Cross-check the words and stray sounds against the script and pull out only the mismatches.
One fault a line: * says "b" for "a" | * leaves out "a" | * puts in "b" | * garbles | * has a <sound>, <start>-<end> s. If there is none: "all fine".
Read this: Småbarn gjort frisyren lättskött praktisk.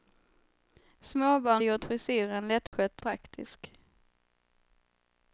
* has a dropout, 2.7-2.7 s